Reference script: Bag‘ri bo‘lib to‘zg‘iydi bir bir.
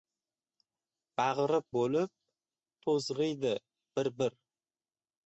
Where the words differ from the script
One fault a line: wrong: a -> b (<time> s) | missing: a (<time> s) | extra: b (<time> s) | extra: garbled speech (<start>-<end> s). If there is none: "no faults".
no faults